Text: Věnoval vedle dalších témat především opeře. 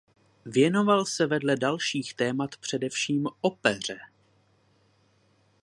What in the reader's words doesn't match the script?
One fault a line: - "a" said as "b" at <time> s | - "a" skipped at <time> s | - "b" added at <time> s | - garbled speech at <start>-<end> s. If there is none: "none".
- "se" added at 1.1 s